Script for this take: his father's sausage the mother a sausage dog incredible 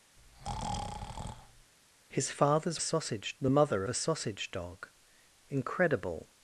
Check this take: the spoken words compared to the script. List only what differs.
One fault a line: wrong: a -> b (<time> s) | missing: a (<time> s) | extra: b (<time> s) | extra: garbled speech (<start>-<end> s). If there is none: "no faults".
no faults